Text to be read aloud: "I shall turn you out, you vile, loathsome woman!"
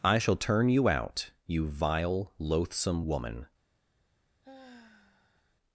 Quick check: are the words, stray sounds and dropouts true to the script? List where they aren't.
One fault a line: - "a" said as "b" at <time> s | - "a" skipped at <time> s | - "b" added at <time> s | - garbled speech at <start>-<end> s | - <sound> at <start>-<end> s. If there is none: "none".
- sigh at 4.4-5.6 s